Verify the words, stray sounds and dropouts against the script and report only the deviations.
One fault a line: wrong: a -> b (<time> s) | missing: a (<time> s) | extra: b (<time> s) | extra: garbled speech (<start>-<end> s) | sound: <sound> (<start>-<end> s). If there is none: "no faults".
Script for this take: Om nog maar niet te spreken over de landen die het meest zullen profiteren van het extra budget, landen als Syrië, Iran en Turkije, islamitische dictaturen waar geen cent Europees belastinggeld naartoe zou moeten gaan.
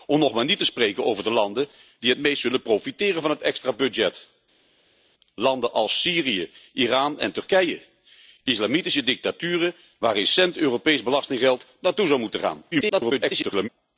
extra: garbled speech (12.7-13.7 s)